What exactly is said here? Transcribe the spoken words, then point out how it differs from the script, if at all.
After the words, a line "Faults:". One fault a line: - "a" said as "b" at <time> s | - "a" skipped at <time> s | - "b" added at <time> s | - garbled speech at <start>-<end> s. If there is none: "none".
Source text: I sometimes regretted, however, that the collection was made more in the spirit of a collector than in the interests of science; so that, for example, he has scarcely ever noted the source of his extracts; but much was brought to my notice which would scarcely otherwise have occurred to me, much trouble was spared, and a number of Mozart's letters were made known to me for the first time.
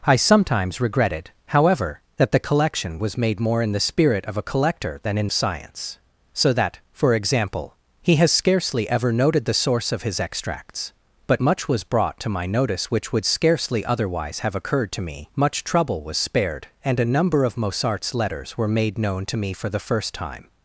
I sometimes regretted, however, that the collection was made more in the spirit of a collector than in science; so that, for example, he has scarcely ever noted the source of his extracts; but much was brought to my notice which would scarcely otherwise have occurred to me, much trouble was spared, and a number of Mozart's letters were made known to me for the first time.
Faults:
- "the interests of" skipped at 5.3 s